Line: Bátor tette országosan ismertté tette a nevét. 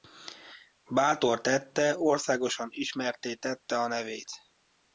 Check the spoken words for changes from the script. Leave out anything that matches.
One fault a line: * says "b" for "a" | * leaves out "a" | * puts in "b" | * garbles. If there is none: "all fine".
all fine